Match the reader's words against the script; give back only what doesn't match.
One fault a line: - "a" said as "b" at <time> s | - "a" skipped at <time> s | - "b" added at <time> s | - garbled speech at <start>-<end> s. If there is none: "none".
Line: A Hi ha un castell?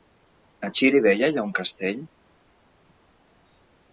- "Xirivella" added at 0.8 s